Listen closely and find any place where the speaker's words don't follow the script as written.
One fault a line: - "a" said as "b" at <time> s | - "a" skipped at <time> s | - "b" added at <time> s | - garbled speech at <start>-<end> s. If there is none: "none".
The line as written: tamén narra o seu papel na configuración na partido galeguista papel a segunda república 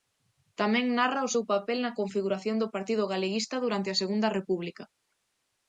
- "na" said as "do" at 2.6 s
- "papel" said as "durante" at 3.6 s